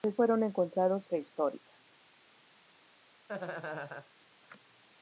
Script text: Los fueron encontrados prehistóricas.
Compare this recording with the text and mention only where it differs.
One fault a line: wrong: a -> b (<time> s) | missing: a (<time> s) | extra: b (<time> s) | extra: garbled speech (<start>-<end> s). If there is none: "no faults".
no faults